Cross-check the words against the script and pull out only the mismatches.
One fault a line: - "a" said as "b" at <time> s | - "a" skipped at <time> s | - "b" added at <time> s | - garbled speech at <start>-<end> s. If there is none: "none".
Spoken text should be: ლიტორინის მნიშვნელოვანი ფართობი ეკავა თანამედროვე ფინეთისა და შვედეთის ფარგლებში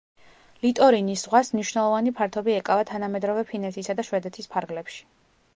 - "ზღვას" added at 1.2 s